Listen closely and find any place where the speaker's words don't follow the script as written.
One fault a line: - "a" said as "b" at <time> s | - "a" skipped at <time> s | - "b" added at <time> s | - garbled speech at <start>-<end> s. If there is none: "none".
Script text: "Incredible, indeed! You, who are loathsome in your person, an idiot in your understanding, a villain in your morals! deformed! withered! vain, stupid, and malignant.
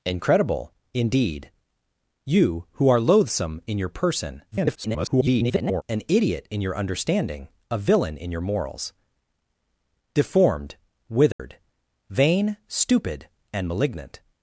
- garbled speech at 4.5-5.8 s